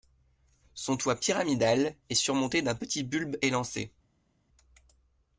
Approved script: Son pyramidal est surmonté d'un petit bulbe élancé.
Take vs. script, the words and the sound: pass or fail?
fail